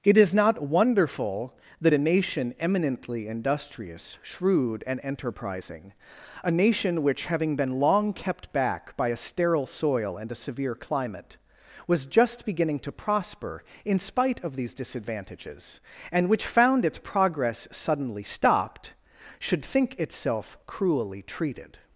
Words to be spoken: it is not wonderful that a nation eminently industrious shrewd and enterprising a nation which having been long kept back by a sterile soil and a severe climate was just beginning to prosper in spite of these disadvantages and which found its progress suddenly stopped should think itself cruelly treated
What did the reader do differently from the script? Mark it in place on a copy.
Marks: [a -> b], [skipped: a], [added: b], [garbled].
it is not wonderful that a nation eminently industrious shrewd and enterprising a nation which having been long kept back by a sterile soil and a severe climate was just beginning to prosper in spite of these disadvantages and which found its progress suddenly stopped should think itself cruelly treated